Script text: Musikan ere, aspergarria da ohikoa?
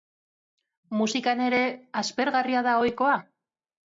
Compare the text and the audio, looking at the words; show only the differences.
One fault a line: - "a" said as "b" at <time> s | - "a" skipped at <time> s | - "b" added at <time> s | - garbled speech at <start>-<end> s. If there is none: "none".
none